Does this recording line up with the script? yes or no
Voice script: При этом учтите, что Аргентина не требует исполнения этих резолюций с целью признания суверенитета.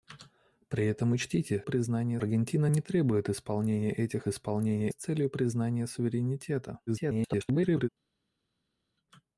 no